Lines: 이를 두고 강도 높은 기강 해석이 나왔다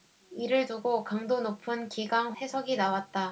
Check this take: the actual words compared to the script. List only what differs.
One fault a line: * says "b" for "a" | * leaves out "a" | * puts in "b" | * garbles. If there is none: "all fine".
all fine